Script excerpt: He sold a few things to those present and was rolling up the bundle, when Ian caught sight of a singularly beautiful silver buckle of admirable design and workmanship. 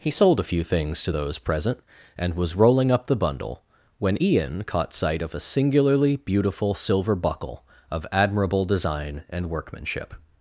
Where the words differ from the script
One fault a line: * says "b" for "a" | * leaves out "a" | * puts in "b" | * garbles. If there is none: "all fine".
all fine